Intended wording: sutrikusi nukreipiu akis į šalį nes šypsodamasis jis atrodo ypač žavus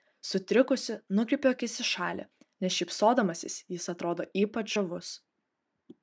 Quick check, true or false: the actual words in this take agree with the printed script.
true